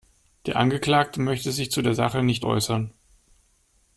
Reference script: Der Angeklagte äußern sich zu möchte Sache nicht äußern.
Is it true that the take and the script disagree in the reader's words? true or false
true